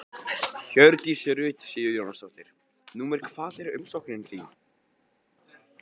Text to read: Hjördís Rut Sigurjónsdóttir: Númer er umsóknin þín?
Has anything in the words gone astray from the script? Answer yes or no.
yes